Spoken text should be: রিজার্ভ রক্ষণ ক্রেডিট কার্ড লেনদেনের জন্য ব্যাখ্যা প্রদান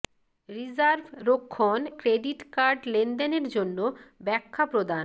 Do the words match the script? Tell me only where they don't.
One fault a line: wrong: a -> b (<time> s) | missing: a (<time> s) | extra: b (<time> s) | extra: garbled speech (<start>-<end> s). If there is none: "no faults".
no faults